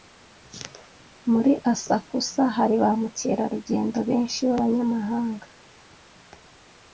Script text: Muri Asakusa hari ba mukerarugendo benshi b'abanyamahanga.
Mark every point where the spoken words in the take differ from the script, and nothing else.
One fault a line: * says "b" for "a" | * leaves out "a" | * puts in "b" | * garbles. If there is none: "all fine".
all fine